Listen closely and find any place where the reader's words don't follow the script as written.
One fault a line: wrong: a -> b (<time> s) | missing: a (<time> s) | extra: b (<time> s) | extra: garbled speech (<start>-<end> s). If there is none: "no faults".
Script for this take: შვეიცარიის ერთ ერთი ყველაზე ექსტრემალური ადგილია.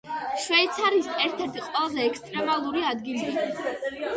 no faults